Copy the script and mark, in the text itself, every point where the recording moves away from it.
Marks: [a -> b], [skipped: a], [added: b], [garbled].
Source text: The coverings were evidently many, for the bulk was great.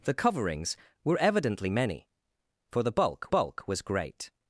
The coverings were evidently many, for the bulk [added: bulk] was great.